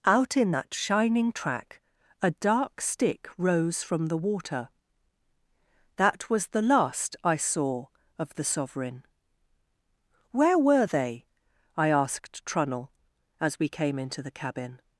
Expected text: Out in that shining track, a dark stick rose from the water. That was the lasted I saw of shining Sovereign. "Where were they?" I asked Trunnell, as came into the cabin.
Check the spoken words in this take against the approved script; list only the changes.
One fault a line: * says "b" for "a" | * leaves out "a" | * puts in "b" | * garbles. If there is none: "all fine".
* says "last" for "lasted"
* says "the" for "shining"
* puts in "we"